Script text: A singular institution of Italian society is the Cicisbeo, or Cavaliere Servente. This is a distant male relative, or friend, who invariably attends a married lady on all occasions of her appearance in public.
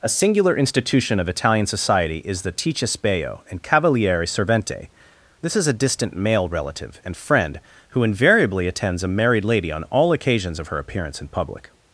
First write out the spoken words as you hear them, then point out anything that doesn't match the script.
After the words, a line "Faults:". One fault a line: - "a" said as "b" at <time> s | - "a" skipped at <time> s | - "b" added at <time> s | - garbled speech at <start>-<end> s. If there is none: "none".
A singular institution of Italian society is the Cicisbeo, and Cavaliere Servente. This is a distant male relative, and friend, who invariably attends a married lady on all occasions of her appearance in public.
Faults:
- "or" said as "and" at 3.5 s
- "or" said as "and" at 7.0 s